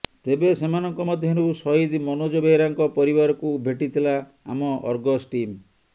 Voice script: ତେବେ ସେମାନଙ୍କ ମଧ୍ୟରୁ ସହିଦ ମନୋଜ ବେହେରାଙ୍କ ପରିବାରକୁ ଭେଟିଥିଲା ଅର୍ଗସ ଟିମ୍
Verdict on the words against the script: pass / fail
fail